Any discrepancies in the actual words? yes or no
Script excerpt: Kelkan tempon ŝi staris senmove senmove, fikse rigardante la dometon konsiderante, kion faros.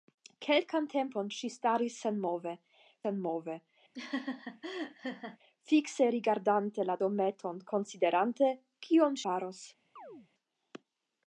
no